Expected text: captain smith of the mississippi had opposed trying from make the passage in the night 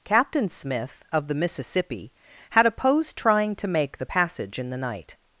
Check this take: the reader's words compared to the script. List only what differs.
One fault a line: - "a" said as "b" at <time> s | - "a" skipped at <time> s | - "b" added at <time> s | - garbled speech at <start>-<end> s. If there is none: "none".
- "from" said as "to" at 3.6 s